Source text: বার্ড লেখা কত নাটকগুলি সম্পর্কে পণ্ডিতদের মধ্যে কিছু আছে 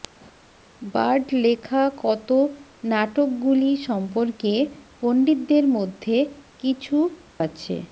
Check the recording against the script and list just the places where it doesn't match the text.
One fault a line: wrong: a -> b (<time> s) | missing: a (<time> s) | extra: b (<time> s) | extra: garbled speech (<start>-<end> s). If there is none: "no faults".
no faults